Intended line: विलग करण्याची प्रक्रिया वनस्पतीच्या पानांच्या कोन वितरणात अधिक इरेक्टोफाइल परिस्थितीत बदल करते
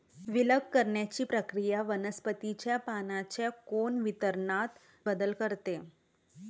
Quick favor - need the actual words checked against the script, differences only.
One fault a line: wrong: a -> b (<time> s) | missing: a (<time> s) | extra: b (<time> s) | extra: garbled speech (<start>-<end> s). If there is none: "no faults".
missing: अधिक इरेक्टोफाइल परिस्थितीत (4.8 s)